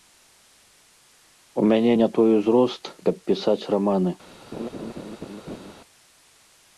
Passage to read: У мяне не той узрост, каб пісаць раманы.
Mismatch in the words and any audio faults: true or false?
true